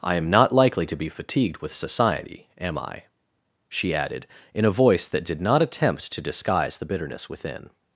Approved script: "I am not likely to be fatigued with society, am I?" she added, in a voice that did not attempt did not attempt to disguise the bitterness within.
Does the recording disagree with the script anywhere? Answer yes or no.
yes